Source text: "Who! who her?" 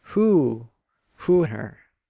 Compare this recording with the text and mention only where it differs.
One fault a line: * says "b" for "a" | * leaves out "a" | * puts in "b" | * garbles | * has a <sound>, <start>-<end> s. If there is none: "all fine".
all fine